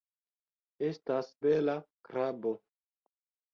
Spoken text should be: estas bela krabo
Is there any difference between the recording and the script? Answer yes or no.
no